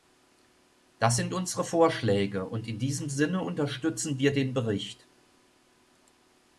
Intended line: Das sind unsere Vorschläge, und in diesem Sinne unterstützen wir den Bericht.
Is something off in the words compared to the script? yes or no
no